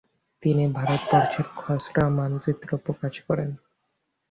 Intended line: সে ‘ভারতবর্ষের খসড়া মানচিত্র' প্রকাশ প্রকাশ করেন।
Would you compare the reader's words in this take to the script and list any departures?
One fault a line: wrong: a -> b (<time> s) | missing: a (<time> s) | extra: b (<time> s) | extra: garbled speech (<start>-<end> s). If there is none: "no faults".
wrong: সে -> তিনি (0.4 s)
missing: প্রকাশ (3.1 s)